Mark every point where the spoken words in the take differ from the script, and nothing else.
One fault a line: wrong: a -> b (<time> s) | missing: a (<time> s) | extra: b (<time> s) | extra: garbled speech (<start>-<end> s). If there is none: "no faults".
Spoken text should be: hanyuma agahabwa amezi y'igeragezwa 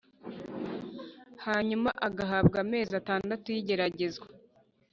extra: atandatu (3.0 s)